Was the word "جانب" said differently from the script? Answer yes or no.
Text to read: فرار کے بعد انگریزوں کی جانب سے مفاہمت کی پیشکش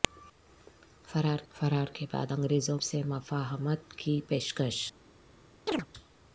yes